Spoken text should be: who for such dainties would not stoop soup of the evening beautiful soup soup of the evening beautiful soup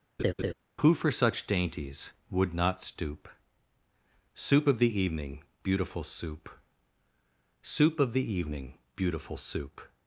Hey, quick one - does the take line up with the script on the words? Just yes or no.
yes